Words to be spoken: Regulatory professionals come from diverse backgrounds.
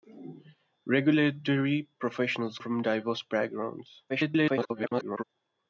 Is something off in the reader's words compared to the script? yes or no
yes